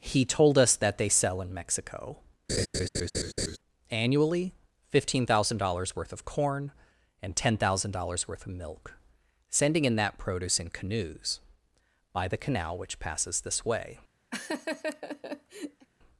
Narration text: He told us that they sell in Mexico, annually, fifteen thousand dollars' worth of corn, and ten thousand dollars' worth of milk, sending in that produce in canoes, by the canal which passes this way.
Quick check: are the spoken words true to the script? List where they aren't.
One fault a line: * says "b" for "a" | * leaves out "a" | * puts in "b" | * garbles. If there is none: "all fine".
all fine